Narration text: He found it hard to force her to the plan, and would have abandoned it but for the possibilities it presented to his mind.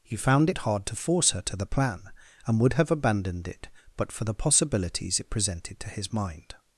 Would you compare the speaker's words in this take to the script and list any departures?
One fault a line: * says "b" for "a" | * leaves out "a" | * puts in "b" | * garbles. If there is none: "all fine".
all fine